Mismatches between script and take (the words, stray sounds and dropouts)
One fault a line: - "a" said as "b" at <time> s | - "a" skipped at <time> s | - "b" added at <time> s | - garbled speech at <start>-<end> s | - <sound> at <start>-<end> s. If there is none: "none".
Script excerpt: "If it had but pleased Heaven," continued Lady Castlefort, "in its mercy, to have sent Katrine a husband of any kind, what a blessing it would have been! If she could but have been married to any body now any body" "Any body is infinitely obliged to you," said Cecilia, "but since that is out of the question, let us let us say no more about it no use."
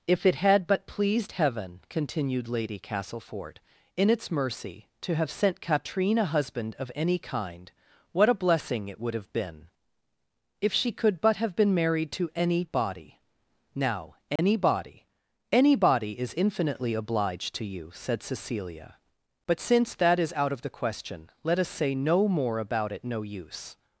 - dropout at 14.4-14.4 s
- "let us" skipped at 21.7 s